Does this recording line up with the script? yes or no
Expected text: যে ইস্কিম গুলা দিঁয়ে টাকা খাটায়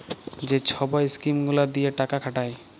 no